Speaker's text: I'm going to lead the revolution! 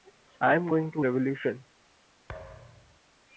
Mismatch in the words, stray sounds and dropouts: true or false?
true